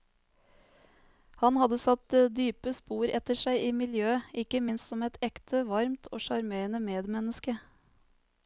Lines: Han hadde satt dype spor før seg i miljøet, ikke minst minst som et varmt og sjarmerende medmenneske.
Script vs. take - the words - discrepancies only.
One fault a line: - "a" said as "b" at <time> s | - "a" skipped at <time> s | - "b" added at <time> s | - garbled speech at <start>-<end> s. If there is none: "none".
- "før" said as "etter" at 3.2 s
- "minst" skipped at 4.9 s
- "ekte" added at 5.3 s